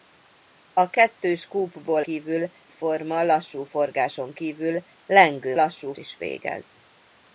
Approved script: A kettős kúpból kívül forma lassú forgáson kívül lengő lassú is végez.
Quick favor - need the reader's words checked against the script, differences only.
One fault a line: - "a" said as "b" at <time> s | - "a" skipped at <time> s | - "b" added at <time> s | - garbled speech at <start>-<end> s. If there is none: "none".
none